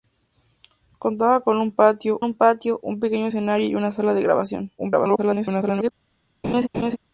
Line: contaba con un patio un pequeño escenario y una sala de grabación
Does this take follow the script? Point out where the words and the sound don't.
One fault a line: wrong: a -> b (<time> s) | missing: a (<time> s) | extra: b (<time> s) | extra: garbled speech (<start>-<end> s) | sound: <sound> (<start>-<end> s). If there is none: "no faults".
extra: patio un (2.3 s)
extra: garbled speech (4.8-5.9 s)
sound: laugh (6.4-7.0 s)